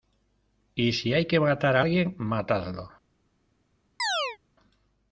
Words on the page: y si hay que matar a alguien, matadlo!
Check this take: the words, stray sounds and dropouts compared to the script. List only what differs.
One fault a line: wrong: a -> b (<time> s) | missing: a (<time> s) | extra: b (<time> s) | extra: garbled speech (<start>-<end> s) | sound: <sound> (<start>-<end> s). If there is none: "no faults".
sound: chirp (4.0-4.4 s)